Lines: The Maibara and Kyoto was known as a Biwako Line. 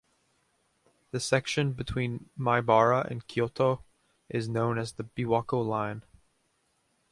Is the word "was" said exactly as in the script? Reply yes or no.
no